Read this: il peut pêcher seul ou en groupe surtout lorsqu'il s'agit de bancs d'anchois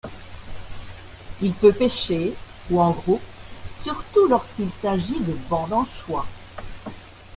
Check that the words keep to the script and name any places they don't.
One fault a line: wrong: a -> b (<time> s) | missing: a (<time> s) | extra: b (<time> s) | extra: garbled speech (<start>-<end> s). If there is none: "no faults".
missing: seul (2.3 s)